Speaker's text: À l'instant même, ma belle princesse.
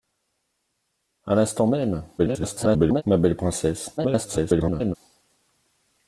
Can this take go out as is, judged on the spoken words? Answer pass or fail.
fail